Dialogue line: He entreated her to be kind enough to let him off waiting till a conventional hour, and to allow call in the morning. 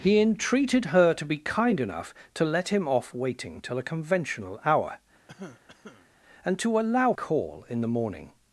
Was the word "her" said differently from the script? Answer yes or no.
no